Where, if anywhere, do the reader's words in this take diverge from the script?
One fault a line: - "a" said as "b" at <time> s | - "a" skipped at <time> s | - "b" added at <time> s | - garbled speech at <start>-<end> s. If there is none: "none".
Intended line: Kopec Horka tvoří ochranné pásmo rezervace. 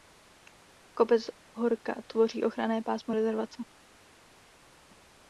none